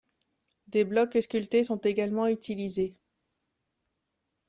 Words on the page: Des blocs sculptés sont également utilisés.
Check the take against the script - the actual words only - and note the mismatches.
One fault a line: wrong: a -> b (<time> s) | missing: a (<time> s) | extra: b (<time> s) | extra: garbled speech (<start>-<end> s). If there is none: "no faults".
no faults